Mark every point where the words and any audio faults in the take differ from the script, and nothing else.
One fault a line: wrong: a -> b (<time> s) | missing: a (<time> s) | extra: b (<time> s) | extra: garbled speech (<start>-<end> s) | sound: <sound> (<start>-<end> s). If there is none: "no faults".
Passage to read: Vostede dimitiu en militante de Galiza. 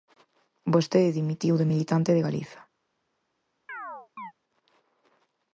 wrong: en -> de (1.6 s)
sound: chirp (3.7-4.3 s)